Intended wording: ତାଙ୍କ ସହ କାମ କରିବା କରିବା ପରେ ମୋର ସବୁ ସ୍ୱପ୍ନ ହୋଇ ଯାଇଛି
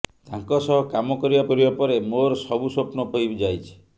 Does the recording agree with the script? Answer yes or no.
yes